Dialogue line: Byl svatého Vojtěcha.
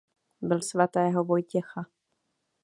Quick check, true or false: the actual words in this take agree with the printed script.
true